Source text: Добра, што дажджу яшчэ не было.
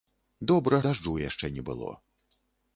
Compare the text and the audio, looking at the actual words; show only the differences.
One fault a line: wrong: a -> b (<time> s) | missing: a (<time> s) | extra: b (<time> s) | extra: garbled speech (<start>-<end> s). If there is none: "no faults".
missing: што (0.8 s)